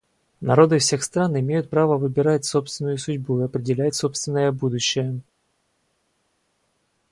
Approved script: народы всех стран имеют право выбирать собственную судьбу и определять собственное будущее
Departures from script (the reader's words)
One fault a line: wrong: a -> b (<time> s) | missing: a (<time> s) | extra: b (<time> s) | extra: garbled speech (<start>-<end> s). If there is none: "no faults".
no faults